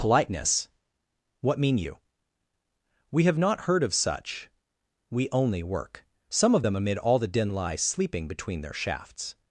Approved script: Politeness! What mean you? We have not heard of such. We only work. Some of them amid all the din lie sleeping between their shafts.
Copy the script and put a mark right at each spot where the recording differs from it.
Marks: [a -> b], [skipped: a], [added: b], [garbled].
Politeness! What mean you? We have not heard of such. We only work. Some of them amid all the din lie sleeping between their shafts.